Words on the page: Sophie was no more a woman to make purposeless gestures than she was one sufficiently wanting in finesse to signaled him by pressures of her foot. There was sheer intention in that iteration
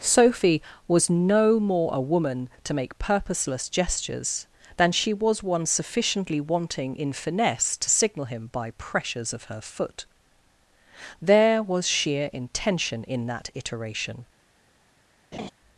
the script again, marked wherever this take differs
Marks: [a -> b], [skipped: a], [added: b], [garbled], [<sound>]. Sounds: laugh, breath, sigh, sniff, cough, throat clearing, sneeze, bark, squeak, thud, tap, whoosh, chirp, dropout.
Sophie was no more a woman to make purposeless gestures than she was one sufficiently wanting in finesse to [signaled -> signal] him by pressures of her foot. There was sheer intention in that iteration [laugh]